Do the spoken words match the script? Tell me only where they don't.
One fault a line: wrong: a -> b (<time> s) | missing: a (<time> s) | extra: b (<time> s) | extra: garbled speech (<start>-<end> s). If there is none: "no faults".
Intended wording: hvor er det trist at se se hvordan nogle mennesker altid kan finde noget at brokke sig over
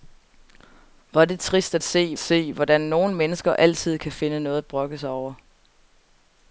no faults